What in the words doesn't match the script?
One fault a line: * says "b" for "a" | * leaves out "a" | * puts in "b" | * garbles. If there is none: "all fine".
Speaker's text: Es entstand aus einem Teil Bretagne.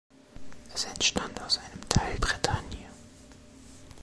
all fine